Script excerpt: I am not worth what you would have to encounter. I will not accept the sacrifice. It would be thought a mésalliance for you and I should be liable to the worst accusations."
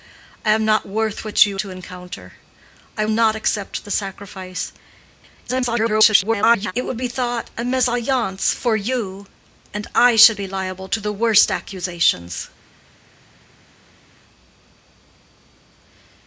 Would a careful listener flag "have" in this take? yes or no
yes